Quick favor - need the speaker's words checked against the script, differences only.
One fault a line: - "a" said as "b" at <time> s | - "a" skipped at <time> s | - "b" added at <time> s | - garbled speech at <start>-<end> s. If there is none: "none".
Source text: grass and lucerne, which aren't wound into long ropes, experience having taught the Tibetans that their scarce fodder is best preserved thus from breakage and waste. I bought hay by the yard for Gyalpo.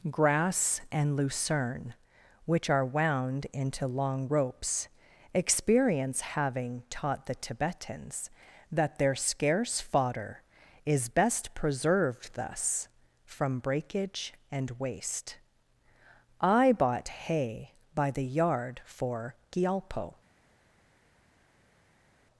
- "aren't" said as "are" at 2.7 s